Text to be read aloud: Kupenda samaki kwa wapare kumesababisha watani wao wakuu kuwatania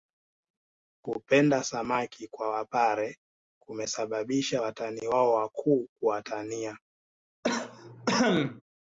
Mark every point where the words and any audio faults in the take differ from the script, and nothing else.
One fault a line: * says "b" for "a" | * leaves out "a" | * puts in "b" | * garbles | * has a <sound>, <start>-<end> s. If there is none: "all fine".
* has a cough, 7.4-8.6 s